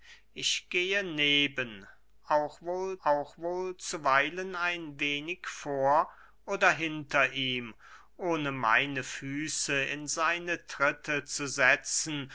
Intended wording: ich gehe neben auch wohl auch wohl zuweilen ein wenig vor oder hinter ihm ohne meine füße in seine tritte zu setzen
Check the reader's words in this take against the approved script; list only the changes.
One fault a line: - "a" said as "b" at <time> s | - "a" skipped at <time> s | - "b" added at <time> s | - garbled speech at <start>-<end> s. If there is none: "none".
none